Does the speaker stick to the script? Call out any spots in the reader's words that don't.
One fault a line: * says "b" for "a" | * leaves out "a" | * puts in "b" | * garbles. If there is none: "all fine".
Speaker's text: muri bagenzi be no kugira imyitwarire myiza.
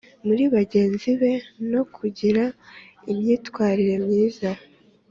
all fine